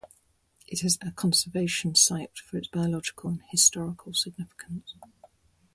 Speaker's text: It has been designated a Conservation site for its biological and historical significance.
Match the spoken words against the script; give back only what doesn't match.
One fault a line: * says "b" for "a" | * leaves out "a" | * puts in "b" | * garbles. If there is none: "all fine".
* leaves out "been designated"